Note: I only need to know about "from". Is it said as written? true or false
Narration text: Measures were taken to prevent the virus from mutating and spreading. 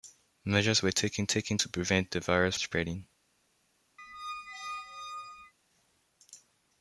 false